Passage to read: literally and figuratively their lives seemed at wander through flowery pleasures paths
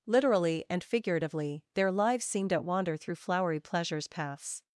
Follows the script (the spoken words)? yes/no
yes